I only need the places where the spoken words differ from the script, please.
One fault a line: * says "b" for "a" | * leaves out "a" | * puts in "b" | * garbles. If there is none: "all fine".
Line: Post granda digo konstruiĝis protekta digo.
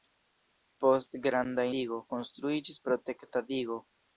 all fine